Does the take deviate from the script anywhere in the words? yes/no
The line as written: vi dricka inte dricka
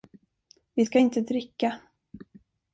yes